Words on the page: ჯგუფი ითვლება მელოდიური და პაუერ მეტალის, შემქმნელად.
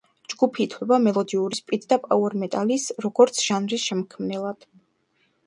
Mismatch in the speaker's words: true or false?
true